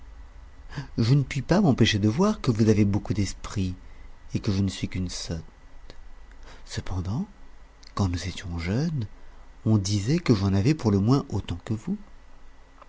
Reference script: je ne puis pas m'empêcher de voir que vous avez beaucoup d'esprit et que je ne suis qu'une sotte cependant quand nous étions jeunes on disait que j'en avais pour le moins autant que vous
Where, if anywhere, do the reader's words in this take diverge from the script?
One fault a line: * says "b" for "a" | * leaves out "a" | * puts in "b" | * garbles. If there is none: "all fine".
all fine